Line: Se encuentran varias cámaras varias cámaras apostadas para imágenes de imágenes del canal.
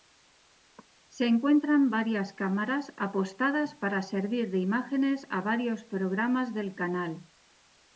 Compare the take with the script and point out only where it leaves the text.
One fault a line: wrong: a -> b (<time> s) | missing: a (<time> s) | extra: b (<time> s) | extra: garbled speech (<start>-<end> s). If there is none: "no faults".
missing: varias cámaras (2.9 s)
wrong: imágenes -> servir (4.0 s)
extra: a varios programas (5.3 s)